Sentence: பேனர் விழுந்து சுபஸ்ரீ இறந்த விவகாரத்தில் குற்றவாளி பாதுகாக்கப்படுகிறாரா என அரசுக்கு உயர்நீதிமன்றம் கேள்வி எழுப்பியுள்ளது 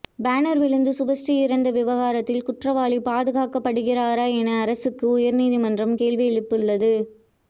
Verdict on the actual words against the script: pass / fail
pass